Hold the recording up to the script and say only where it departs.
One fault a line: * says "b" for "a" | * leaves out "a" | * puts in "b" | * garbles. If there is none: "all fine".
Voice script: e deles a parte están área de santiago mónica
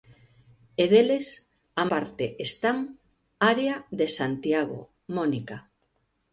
all fine